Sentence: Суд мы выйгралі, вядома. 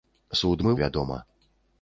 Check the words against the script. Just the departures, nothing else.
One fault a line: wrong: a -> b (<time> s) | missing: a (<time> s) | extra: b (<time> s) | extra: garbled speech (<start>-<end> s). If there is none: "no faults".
missing: выйгралі (0.7 s)